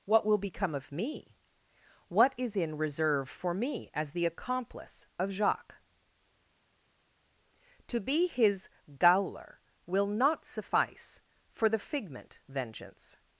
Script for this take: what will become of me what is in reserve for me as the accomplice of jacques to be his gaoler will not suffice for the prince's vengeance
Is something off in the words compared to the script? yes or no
yes